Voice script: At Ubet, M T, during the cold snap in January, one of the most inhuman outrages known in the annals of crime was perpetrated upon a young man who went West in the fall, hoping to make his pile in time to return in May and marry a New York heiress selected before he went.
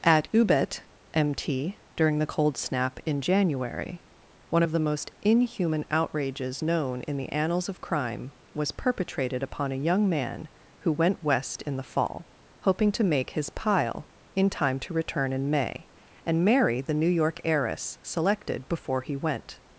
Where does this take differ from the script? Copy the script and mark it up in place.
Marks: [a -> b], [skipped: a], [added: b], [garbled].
At Ubet, M T, during the cold snap in January, one of the most inhuman outrages known in the annals of crime was perpetrated upon a young man who went West in the fall, hoping to make his pile in time to return in May and marry [a -> the] New York heiress selected before he went.